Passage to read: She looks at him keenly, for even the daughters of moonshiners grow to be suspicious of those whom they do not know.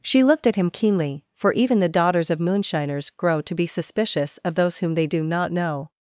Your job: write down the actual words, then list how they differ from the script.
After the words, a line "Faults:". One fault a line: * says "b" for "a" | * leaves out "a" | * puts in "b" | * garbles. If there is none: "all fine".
She looked at him keenly, for even the daughters of moonshiners grow to be suspicious of those whom they do not know.
Faults:
* says "looked" for "looks"